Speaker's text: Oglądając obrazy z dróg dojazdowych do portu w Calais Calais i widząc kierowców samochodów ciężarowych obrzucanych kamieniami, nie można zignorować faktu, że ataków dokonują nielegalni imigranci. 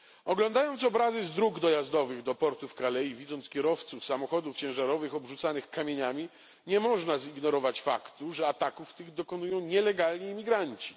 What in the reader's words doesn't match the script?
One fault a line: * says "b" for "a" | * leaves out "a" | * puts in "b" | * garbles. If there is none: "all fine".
* leaves out "Calais"
* puts in "tych"